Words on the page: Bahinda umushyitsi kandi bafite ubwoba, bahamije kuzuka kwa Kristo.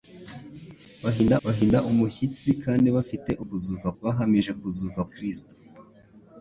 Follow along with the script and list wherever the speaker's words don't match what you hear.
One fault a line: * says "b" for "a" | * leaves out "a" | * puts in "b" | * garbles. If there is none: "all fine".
* puts in "bahinda"
* says "kuzuka" for "ubwoba"
* leaves out "kwa"